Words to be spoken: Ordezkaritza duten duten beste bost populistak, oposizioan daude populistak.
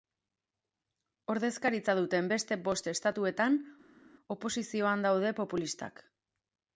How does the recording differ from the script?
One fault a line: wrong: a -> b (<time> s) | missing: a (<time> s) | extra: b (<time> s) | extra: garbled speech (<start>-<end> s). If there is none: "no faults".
missing: duten (2.3 s)
wrong: populistak -> estatuetan (2.9 s)